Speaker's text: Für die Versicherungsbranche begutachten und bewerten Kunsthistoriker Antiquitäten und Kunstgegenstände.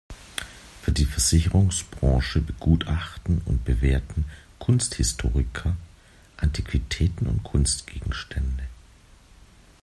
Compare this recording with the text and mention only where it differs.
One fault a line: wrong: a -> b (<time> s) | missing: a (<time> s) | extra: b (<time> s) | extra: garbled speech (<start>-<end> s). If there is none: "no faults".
no faults